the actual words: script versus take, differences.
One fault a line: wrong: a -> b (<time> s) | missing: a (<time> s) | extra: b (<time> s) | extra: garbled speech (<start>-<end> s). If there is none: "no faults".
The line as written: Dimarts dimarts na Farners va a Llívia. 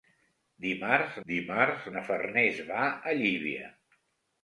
no faults